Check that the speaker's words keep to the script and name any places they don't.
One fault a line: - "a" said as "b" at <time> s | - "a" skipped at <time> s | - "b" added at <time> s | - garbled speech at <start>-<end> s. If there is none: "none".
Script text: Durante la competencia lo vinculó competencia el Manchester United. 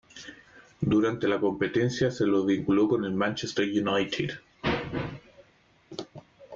- "se" added at 2.1 s
- "competencia" said as "con" at 2.9 s